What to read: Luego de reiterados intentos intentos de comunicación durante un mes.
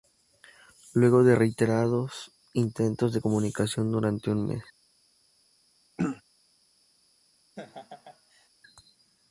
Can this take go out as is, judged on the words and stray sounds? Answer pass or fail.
fail